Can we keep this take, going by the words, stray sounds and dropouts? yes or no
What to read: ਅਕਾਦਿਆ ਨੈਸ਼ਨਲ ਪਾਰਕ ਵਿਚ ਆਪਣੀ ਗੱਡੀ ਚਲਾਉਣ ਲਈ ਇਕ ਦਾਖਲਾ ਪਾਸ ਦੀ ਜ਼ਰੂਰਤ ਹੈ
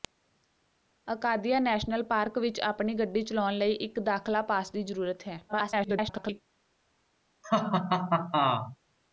no